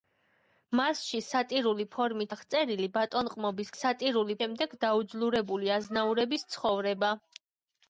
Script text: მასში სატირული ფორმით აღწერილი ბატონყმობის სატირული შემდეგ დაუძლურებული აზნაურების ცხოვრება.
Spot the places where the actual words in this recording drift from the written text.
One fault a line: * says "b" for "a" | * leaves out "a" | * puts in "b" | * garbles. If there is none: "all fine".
all fine